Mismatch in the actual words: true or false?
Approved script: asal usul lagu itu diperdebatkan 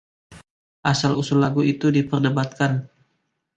false